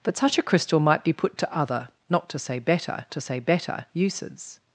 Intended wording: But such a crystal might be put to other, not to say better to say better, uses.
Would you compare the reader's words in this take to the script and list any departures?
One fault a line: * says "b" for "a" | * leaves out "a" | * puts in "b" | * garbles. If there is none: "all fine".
all fine